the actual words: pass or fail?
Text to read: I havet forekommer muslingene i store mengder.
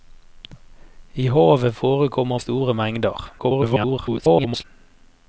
fail